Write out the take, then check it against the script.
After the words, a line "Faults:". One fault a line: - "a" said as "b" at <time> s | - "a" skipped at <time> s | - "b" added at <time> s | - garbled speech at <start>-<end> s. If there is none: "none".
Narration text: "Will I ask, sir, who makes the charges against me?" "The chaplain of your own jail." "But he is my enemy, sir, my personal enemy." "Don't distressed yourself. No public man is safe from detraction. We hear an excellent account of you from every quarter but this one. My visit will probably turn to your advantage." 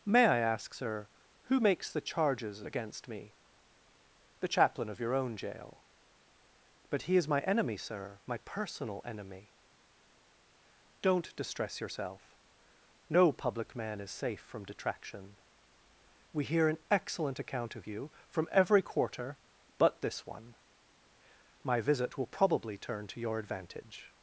"May I ask, sir, who makes the charges against me?" "The chaplain of your own jail." "But he is my enemy, sir, my personal enemy." "Don't distress yourself. No public man is safe from detraction. We hear an excellent account of you from every quarter but this one. My visit will probably turn to your advantage."
Faults:
- "Will" said as "May" at 0.1 s
- "distressed" said as "distress" at 11.3 s